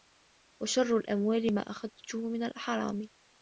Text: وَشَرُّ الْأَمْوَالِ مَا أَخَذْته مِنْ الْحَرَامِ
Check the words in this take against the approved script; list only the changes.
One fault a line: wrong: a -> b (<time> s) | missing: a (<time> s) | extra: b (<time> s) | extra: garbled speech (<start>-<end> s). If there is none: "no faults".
no faults